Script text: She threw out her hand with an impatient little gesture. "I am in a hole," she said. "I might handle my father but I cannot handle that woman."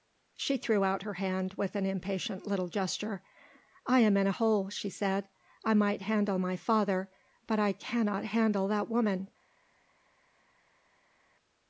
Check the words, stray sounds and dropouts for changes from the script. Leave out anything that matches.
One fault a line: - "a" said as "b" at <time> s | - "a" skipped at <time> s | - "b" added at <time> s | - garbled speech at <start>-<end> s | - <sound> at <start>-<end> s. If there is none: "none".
none